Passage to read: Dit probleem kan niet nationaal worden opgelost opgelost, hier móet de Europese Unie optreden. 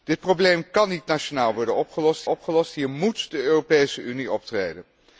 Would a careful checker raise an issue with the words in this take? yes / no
no